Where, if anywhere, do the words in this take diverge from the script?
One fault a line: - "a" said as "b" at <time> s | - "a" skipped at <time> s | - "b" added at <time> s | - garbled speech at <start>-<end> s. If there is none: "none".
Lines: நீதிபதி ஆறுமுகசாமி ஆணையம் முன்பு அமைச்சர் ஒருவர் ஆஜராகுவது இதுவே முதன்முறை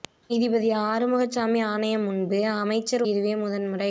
- "ஒருவர் ஆஜராகுவது" skipped at 3.0 s